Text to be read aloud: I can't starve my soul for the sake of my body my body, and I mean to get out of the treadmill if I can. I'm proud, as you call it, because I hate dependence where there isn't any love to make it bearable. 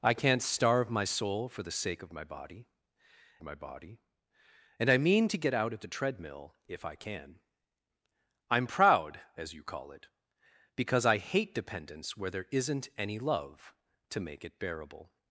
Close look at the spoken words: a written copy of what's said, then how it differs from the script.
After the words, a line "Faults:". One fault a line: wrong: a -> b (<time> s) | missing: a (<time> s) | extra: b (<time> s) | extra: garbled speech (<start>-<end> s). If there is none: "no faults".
I can't starve my soul for the sake of my body my body, and I mean to get out of the treadmill if I can. I'm proud, as you call it, because I hate dependence where there isn't any love to make it bearable.
Faults:
no faults